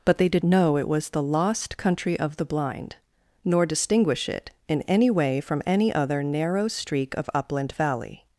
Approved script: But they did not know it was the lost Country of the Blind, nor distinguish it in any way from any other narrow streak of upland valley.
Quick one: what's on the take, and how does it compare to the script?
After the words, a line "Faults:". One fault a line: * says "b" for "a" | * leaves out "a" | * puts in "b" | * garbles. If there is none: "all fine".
But they did know it was the lost Country of the Blind, nor distinguish it in any way from any other narrow streak of upland valley.
Faults:
* leaves out "not"